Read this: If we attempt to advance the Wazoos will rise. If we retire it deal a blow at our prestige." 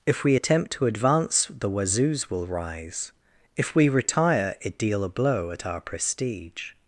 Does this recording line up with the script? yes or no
yes